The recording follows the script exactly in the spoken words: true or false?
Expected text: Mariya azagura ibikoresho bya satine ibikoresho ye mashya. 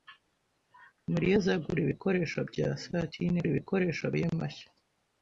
true